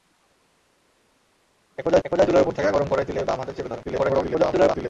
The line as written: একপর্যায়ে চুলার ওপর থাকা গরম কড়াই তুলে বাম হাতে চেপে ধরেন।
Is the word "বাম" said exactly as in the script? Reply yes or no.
yes